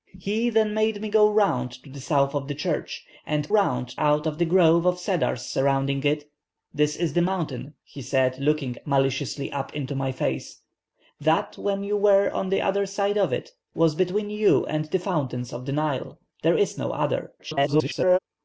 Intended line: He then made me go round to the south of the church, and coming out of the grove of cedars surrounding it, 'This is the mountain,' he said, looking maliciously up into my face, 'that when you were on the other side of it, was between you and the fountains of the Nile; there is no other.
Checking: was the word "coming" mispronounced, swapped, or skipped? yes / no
yes